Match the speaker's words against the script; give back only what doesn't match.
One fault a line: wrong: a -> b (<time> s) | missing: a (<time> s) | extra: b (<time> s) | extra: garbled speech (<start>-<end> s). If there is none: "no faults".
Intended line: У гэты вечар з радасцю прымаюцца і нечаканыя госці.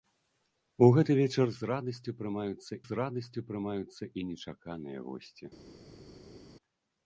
extra: з радасцю прымаюцца (2.9 s)